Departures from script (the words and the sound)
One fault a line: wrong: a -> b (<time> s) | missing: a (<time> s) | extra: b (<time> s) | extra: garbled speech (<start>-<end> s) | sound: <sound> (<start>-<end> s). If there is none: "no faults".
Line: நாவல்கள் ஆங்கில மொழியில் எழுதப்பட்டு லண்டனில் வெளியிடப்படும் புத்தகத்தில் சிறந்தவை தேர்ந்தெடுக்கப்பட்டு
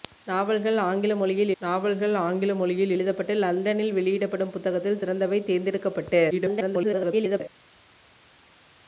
extra: நாவல்கள் ஆங்கில மொழியில் (1.6 s)
extra: garbled speech (6.3-7.4 s)